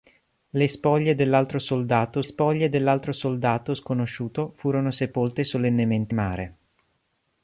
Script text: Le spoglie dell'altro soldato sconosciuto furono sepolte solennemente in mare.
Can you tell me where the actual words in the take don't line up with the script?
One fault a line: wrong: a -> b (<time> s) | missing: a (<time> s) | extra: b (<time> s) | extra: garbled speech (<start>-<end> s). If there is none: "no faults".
extra: spoglie dell'altro soldato (2.2 s)
missing: in (6.1 s)